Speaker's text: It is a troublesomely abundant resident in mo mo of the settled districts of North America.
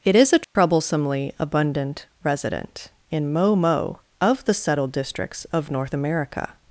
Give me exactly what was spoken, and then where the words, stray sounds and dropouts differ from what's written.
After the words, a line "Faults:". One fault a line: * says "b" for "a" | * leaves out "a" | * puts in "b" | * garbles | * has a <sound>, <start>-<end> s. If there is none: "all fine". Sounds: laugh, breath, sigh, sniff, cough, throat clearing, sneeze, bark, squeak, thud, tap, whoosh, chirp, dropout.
It is a troublesomely abundant resident in mo mo of the settled districts of North America.
Faults:
* has a dropout, 0.4-0.6 s